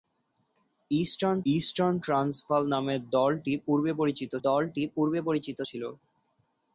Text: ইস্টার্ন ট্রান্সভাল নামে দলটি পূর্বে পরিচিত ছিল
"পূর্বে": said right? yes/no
yes